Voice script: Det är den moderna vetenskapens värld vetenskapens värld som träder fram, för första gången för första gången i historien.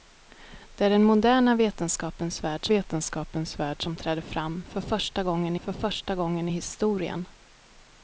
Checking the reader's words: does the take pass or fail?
pass